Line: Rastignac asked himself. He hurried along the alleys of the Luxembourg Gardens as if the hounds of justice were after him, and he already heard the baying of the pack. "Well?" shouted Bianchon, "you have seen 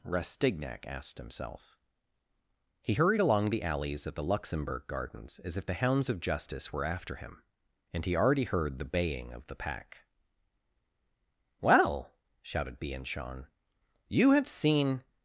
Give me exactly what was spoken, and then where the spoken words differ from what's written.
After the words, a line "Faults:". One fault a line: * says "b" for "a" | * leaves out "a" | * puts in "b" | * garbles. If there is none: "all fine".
Rastignac asked himself. He hurried along the alleys of the Luxembourg Gardens as if the hounds of justice were after him, and he already heard the baying of the pack. "Well?" shouted Bianchon, "you have seen
Faults:
all fine